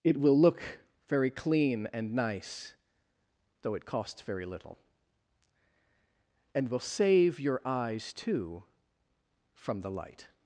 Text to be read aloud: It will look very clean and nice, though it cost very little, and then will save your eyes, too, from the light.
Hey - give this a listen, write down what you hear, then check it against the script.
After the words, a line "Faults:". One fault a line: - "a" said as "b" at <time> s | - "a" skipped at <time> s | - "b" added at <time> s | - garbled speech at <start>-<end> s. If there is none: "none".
It will look very clean and nice, though it costs very little, and will save your eyes, too, from the light.
Faults:
- "cost" said as "costs" at 3.9 s
- "then" skipped at 6.7 s